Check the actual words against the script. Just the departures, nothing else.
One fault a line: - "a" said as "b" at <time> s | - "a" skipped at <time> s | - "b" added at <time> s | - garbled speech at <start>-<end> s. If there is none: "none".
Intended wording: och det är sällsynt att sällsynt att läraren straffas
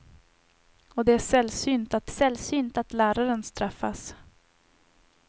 none